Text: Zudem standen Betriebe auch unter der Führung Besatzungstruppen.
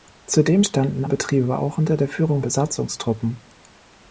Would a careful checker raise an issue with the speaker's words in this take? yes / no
no